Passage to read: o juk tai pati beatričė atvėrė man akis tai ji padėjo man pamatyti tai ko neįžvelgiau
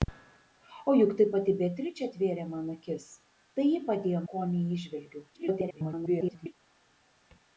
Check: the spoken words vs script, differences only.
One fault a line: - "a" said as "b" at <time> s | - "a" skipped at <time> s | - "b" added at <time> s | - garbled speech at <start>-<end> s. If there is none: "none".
- "man pamatyti tai" skipped at 4.2 s
- garbled speech at 5.3-6.5 s